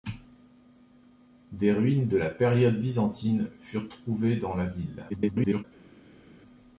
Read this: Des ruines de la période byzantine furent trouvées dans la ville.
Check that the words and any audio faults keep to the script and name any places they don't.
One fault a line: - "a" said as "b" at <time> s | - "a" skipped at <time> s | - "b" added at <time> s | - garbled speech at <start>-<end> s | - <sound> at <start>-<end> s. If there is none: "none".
- garbled speech at 5.1-5.6 s